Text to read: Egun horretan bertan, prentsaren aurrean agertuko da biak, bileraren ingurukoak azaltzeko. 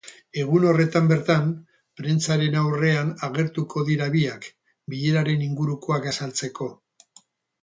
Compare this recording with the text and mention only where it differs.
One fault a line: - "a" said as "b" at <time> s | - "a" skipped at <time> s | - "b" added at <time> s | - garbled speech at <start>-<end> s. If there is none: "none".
- "da" said as "dira" at 3.9 s